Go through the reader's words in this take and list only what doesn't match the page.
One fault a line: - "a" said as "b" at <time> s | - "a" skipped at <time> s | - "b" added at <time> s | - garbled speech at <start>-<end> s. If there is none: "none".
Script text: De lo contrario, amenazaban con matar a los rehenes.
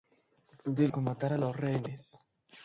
- "lo contrario amenazaban" skipped at 0.9 s